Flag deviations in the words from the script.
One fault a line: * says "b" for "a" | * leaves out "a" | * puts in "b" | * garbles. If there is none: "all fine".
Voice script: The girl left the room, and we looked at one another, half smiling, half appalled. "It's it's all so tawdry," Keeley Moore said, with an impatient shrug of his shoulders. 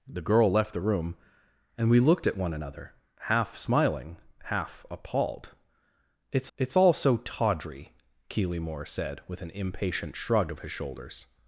all fine